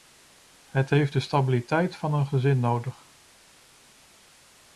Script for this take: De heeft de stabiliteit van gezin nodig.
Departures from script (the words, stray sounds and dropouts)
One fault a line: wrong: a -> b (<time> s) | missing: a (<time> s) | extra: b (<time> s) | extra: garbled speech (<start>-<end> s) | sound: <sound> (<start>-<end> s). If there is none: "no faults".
wrong: De -> Het (0.7 s)
extra: een (2.1 s)